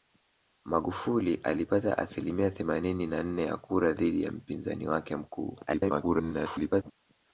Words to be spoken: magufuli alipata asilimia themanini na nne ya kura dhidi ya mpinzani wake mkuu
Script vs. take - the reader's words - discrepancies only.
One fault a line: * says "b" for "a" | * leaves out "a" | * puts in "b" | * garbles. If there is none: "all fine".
* garbles